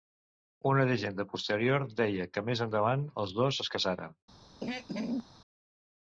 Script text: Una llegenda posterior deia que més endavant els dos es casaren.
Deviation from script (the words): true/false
false